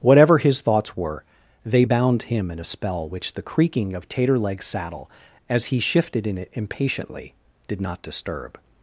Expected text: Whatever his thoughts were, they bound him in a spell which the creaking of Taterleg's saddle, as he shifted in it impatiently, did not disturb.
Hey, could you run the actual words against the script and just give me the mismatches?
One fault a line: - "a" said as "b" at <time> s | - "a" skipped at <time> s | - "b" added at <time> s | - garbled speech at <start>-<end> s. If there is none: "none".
none